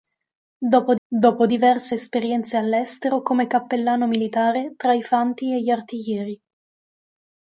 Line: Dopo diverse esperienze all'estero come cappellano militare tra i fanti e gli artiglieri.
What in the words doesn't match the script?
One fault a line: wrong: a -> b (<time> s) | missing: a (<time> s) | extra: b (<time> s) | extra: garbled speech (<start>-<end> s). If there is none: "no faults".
extra: dopo (1.1 s)